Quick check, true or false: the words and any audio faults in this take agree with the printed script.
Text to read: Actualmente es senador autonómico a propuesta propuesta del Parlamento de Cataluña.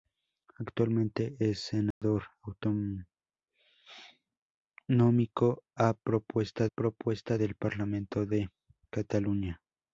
false